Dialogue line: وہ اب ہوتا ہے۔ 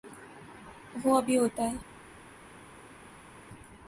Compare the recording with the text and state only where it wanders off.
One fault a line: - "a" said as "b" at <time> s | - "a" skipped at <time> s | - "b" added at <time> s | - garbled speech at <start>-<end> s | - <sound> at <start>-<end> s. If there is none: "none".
- "بھی" added at 1.2 s